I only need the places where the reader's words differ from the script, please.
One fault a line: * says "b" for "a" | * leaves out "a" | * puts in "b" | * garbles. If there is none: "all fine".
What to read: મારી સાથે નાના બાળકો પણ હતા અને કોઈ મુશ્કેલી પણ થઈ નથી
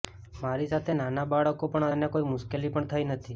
* leaves out "હતા"